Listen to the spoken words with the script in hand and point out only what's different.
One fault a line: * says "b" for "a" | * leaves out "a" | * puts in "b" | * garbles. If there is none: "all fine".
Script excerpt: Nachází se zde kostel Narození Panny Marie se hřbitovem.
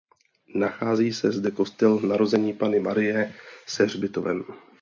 all fine